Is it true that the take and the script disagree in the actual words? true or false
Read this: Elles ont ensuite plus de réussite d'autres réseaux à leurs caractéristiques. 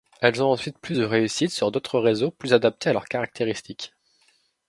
true